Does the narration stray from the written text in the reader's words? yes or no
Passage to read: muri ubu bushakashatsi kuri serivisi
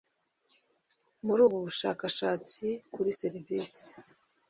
no